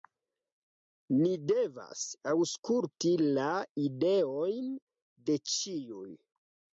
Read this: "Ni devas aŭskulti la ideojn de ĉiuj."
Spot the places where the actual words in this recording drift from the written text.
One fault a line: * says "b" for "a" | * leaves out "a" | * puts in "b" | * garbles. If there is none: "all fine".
all fine